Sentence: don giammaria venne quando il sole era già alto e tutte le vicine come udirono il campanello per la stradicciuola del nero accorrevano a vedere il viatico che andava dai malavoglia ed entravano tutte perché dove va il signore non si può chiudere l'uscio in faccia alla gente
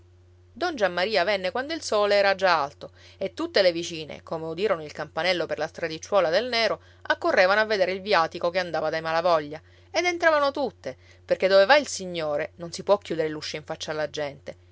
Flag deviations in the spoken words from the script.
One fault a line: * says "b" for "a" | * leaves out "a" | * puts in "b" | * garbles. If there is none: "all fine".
all fine